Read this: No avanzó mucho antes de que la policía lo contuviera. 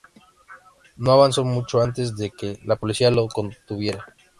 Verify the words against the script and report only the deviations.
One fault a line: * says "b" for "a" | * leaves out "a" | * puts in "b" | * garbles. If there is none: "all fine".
all fine